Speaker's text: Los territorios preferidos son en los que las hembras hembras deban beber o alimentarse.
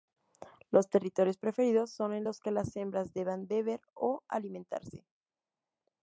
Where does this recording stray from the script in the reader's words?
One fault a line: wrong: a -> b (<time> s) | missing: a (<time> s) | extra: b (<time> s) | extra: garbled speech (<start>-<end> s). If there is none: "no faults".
missing: hembras (3.1 s)